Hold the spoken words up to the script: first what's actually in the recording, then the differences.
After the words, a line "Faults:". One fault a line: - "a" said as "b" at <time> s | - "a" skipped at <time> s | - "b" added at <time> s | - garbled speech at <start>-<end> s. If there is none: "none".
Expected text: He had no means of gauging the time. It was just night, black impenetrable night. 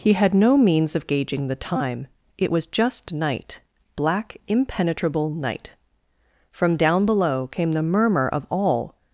He had no means of gauging the time. It was just night, black impenetrable night. From down below came the murmur of all
Faults:
- "From down below came the murmur of all" added at 6.5 s